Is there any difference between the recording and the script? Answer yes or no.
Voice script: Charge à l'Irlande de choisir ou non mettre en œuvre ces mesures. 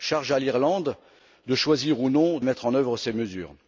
no